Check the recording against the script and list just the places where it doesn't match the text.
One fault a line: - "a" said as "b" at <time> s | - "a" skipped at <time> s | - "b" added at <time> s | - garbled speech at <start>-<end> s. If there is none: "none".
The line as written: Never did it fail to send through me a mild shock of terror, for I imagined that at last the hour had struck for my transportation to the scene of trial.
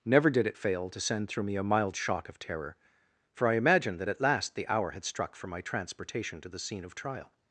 none